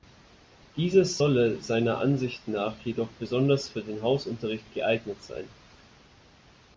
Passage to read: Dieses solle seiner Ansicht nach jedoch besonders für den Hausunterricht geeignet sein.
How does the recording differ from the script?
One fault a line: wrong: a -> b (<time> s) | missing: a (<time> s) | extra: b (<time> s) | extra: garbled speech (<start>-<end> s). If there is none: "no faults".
no faults